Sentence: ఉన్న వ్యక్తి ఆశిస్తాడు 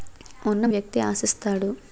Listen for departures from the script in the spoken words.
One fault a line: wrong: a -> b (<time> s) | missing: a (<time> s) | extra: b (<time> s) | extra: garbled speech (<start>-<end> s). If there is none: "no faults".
no faults